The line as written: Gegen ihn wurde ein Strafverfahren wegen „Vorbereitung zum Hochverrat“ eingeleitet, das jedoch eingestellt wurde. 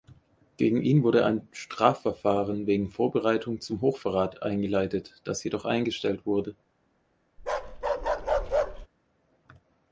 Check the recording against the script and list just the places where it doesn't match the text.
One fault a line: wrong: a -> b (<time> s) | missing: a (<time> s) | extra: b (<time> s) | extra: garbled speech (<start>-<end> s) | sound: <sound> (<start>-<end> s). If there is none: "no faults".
sound: bark (7.4-8.9 s)